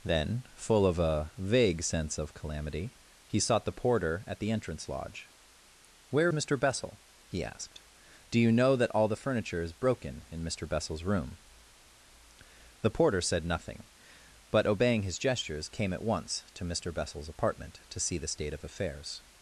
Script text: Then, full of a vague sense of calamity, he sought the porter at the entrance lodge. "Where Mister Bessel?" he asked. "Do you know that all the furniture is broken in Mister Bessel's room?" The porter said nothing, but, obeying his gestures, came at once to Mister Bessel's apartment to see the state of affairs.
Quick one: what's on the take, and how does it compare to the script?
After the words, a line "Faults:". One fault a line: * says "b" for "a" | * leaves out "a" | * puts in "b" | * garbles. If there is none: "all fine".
Then, full of a vague sense of calamity, he sought the porter at the entrance lodge. "Where Mister Bessel?" he asked. "Do you know that all the furniture is broken in Mister Bessel's room?" The porter said nothing, but, obeying his gestures, came at once to Mister Bessel's apartment to see the state of affairs.
Faults:
all fine